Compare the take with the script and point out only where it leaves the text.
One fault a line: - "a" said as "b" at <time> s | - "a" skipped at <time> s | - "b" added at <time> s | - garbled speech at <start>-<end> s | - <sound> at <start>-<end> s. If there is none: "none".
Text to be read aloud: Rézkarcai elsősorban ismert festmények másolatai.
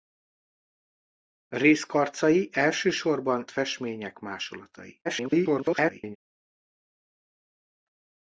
- "ismert" skipped at 3.5 s
- garbled speech at 5.0-6.2 s